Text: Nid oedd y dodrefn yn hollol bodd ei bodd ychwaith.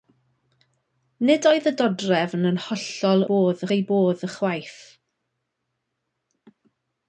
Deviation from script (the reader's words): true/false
false